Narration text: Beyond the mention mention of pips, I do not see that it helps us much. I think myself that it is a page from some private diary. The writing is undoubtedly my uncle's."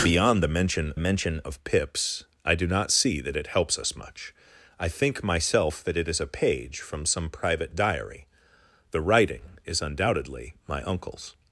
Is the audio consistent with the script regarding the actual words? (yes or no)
yes